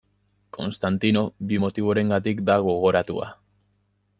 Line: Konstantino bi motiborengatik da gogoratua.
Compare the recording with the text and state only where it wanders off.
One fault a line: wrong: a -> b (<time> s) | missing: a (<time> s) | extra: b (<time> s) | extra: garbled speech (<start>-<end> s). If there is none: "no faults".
no faults